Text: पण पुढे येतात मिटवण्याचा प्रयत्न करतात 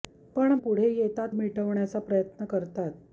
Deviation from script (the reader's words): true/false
false